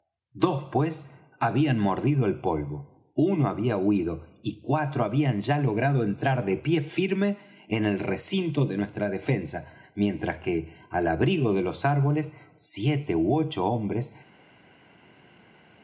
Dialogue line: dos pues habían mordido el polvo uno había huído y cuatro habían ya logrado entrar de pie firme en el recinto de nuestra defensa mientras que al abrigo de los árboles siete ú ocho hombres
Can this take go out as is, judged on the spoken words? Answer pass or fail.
pass